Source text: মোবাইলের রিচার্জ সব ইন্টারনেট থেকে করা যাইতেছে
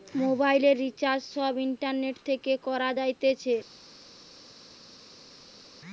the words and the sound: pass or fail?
pass